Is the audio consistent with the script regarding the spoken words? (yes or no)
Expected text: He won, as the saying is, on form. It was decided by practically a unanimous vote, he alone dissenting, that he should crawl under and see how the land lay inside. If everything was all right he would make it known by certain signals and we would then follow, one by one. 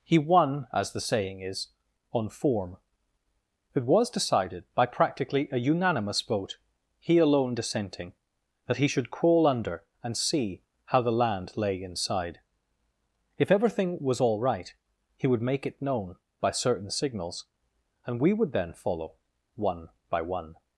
yes